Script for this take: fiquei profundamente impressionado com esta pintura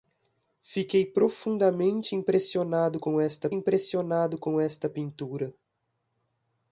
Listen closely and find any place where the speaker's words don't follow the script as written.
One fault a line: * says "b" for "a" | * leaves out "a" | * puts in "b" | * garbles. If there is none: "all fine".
* puts in "impressionado com esta"